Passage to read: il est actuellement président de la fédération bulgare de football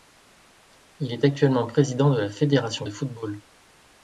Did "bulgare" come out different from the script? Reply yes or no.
yes